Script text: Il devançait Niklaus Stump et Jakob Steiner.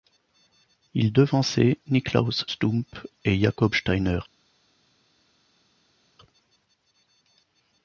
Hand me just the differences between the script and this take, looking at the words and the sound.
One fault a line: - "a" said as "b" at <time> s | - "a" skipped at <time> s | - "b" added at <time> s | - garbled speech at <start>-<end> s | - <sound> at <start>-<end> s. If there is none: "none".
none